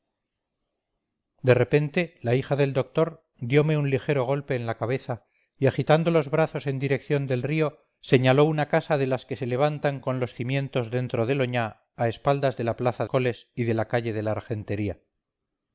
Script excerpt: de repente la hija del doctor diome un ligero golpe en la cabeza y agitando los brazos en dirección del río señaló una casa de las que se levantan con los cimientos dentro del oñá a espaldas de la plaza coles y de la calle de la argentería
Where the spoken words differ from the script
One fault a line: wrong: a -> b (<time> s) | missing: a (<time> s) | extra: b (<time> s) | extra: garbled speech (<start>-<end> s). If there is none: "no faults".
no faults